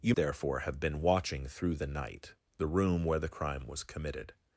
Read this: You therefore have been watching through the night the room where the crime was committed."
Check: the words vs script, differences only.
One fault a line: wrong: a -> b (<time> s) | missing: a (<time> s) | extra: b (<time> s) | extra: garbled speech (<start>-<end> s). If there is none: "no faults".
no faults